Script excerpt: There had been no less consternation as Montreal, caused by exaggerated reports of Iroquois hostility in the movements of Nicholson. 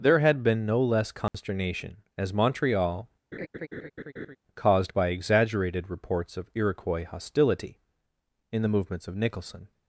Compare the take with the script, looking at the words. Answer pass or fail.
pass